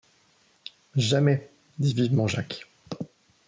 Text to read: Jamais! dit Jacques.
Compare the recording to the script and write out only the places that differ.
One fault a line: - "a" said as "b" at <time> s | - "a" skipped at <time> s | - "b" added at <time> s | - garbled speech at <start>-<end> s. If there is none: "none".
- "vivement" added at 1.9 s